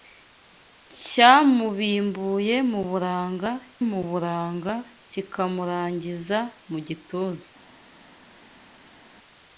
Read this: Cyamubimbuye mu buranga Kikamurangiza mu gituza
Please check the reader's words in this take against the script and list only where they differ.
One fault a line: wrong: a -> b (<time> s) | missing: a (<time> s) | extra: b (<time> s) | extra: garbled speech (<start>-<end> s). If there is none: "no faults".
extra: mu buranga (3.9 s)